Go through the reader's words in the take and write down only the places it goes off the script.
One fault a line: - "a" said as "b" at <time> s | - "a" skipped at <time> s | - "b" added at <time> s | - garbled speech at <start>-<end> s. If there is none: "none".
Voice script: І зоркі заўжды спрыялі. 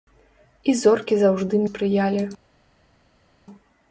none